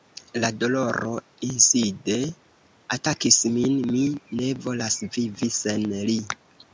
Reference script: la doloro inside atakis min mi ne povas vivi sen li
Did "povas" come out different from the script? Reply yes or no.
yes